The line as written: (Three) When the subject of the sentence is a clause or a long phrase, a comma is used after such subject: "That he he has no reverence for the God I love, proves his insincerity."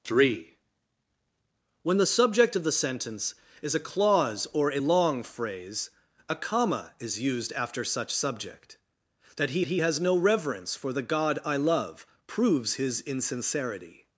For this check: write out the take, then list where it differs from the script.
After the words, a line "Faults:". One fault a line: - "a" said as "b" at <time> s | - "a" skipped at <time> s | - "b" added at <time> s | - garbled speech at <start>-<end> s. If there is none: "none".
(Three) When the subject of the sentence is a clause or a long phrase, a comma is used after such subject: "That he he has no reverence for the God I love, proves his insincerity."
Faults:
none